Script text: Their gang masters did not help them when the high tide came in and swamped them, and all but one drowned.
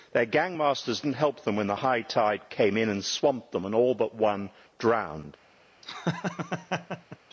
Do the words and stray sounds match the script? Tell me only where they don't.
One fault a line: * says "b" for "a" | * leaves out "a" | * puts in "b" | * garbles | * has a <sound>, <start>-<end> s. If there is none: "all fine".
* leaves out "did"
* has a laugh, 5.8-7.2 s